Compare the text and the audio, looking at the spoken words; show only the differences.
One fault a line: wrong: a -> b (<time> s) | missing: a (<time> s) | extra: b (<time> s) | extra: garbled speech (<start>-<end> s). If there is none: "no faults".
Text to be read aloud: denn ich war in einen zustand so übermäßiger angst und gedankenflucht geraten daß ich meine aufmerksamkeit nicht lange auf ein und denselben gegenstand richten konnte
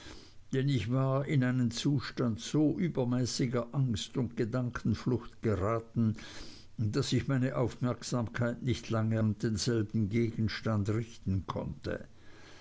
missing: auf ein (9.2 s)